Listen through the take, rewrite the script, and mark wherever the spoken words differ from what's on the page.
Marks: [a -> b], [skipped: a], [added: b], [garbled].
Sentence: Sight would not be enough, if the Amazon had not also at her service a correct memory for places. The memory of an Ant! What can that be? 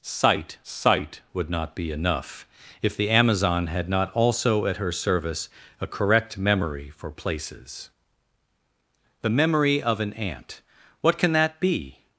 Sight [added: sight] would not be enough, if the Amazon had not also at her service a correct memory for places. The memory of an Ant! What can that be?